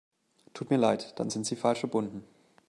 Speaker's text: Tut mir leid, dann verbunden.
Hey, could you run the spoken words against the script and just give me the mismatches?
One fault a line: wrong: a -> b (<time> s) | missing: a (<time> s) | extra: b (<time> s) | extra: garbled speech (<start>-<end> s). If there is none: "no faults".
extra: sind Sie falsch (1.3 s)